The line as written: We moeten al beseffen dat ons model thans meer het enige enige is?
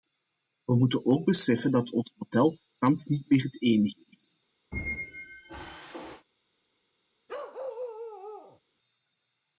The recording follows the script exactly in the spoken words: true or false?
false